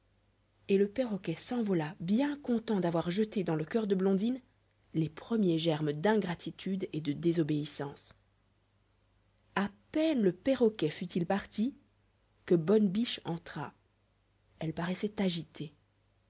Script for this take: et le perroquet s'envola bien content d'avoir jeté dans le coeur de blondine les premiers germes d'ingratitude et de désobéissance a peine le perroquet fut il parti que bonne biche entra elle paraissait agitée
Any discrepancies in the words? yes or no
no